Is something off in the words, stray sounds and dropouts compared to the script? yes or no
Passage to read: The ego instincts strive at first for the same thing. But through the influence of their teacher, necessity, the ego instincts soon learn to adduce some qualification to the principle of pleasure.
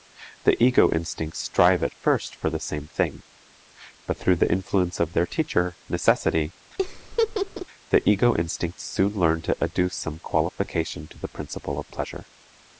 yes